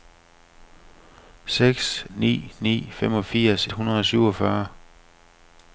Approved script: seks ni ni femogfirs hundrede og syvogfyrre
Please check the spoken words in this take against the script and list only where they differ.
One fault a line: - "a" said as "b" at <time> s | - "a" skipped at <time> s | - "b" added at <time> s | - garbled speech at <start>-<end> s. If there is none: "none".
none